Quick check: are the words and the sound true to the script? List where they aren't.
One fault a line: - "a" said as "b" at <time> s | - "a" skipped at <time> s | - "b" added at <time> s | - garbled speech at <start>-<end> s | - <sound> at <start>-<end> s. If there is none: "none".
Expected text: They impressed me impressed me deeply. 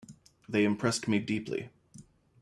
- "impressed me" skipped at 1.2 s